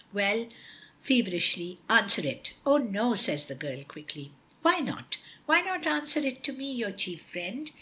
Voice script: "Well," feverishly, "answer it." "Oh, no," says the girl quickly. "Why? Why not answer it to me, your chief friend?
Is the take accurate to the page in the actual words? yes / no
no